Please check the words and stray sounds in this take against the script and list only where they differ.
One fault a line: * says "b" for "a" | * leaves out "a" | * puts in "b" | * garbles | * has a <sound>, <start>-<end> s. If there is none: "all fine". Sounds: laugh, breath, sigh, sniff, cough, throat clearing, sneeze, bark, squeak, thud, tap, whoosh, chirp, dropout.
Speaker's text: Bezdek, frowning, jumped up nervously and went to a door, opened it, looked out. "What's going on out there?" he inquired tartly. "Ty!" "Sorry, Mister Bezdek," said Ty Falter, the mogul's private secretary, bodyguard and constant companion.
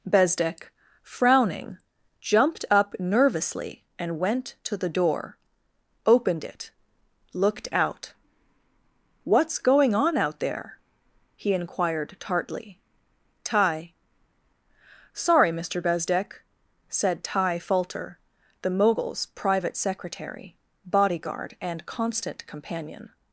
* says "the" for "a"